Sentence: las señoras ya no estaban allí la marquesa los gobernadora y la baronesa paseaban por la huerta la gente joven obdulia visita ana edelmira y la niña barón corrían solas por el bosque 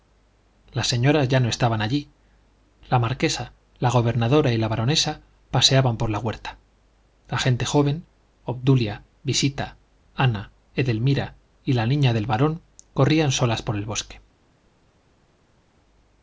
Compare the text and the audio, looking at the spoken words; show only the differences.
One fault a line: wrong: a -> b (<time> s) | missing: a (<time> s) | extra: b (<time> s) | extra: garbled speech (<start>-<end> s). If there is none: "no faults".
wrong: los -> la (3.8 s)
extra: del (12.1 s)